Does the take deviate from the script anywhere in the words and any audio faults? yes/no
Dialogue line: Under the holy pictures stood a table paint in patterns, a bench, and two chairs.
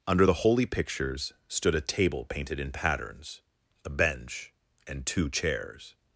yes